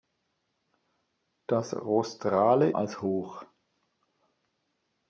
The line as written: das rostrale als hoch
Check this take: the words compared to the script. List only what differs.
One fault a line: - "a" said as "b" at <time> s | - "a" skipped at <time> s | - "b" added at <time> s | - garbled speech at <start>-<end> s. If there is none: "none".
none